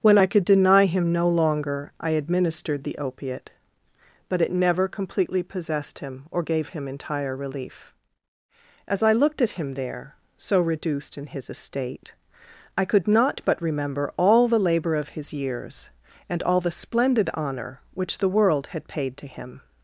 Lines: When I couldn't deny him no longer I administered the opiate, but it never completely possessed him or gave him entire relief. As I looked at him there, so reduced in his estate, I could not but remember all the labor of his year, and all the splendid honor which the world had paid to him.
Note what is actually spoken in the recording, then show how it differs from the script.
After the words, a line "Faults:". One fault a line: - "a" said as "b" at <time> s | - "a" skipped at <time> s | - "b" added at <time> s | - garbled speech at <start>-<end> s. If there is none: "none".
When I could deny him no longer I administered the opiate, but it never completely possessed him or gave him entire relief. As I looked at him there, so reduced in his estate, I could not but remember all the labor of his years, and all the splendid honor which the world had paid to him.
Faults:
- "couldn't" said as "could" at 0.3 s
- "year" said as "years" at 15.3 s